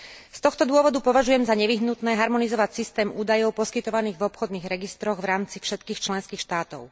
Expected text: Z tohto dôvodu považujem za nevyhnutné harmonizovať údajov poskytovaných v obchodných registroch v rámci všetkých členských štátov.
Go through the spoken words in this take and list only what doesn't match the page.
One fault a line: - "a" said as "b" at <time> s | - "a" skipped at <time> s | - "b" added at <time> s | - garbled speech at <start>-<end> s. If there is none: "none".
- "systém" added at 2.7 s